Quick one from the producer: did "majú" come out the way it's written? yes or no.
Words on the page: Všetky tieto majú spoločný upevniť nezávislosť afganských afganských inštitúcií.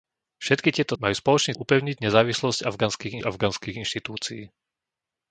yes